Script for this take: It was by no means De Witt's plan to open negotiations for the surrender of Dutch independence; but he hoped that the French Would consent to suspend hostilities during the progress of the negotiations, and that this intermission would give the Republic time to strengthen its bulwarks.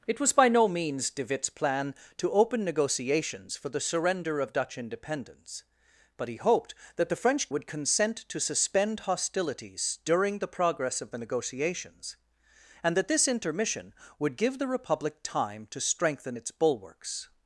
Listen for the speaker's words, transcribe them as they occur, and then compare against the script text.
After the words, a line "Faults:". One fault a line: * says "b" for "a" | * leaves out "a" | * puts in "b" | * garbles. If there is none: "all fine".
It was by no means De Witt's plan to open negotiations for the surrender of Dutch independence; but he hoped that the French Would consent to suspend hostilities during the progress of the negotiations, and that this intermission would give the Republic time to strengthen its bulwarks.
Faults:
all fine